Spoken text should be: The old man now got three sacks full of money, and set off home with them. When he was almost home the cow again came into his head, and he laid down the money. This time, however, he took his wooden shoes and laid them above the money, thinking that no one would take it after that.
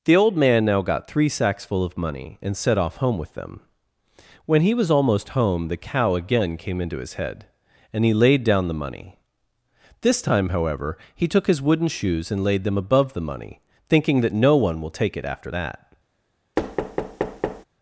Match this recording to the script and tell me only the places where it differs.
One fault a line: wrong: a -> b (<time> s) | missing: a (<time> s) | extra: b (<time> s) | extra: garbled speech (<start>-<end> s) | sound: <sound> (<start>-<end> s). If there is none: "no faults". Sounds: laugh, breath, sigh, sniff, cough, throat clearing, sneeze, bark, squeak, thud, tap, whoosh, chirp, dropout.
wrong: would -> will (14.8 s)
sound: thud (16.6-17.6 s)